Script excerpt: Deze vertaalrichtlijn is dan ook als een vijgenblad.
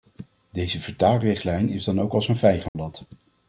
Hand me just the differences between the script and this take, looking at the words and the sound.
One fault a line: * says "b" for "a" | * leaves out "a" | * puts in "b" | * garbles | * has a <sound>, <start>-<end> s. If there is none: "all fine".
* has a dropout, 2.7-2.8 s